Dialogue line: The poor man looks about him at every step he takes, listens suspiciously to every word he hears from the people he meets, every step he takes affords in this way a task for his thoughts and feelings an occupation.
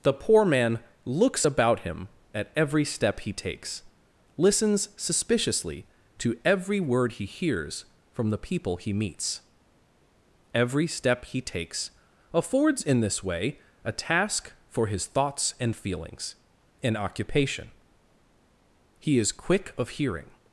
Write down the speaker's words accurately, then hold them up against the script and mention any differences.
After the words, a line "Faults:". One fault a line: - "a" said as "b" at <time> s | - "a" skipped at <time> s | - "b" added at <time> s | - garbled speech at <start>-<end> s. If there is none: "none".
The poor man looks about him at every step he takes, listens suspiciously to every word he hears from the people he meets, every step he takes affords in this way a task for his thoughts and feelings an occupation. He is quick of hearing
Faults:
- "He is quick of hearing" added at 19.0 s